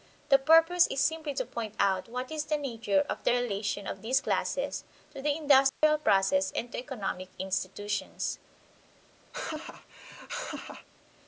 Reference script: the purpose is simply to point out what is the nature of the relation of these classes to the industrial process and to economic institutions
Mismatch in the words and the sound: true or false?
true